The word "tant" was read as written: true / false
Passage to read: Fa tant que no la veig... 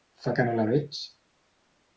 false